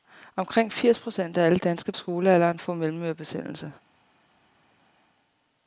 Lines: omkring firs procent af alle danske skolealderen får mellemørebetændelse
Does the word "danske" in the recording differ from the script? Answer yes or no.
no